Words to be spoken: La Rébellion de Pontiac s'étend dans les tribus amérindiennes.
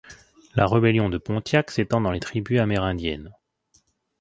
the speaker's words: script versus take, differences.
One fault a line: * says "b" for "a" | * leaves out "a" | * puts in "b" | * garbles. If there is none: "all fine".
all fine